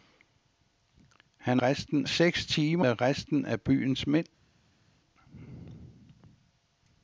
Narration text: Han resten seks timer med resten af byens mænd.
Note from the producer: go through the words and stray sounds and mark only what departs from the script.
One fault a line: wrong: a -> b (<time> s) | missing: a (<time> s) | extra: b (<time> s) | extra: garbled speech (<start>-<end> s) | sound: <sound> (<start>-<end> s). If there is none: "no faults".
no faults